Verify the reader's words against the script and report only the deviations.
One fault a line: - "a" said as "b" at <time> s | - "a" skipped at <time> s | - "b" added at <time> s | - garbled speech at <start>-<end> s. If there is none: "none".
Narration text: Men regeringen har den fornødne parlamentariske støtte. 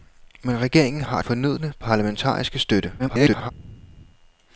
- "den" skipped at 1.2 s
- garbled speech at 3.0-3.5 s